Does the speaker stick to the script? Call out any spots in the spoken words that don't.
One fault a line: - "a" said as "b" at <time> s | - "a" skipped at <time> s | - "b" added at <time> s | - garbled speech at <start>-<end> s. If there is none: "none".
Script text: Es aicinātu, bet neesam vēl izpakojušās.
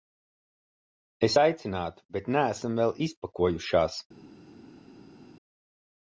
none